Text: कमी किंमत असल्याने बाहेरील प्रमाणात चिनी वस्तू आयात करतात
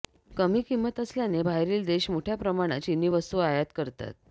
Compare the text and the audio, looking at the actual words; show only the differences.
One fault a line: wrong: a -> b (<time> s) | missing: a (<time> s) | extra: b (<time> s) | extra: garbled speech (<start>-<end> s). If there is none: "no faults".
extra: देश मोठ्या (1.9 s)